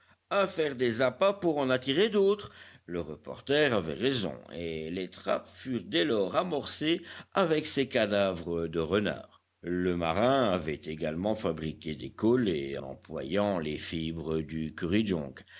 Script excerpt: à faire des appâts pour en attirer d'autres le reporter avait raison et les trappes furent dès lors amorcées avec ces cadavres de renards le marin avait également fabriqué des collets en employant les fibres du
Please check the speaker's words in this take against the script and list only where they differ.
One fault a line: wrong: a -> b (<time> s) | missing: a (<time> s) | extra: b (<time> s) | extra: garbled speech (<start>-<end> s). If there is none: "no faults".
missing: en (12.8 s)